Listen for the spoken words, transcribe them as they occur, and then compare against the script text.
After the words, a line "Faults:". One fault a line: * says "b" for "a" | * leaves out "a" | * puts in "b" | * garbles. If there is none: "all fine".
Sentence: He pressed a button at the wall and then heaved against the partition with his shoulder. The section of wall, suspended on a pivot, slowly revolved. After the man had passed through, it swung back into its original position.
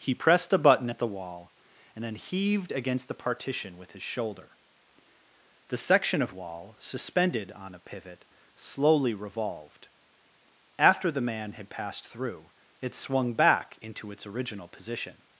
He pressed a button at the wall and then heaved against the partition with his shoulder. The section of wall, suspended on a pivot, slowly revolved. After the man had passed through, it swung back into its original position.
Faults:
all fine